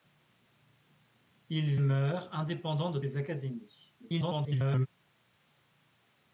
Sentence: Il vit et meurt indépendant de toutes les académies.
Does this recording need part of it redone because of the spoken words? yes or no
yes